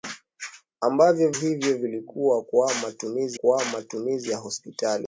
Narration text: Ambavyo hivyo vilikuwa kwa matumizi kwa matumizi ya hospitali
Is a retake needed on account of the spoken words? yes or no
no